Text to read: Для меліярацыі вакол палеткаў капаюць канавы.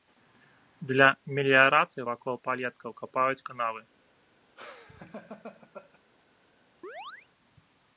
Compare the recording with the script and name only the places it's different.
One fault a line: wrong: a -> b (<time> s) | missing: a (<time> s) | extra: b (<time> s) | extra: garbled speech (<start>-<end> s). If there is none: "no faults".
no faults